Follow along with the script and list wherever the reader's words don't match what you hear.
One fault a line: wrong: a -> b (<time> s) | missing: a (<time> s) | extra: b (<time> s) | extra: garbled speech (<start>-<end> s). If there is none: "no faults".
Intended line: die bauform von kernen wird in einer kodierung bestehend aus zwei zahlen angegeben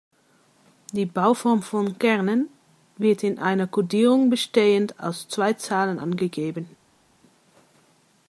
no faults